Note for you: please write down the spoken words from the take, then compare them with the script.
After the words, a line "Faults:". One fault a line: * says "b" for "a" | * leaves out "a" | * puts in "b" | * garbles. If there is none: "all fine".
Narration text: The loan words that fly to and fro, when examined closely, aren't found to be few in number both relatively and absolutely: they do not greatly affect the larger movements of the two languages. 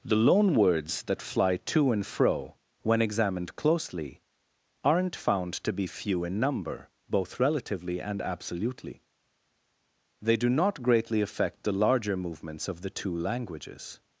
The loan words that fly to and fro, when examined closely, aren't found to be few in number both relatively and absolutely: they do not greatly affect the larger movements of the two languages.
Faults:
all fine